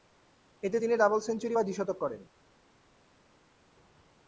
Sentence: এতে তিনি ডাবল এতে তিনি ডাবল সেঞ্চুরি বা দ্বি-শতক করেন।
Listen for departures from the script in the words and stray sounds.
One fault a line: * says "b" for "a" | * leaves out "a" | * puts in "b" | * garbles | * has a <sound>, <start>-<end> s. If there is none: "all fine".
* leaves out "এতে তিনি ডাবল"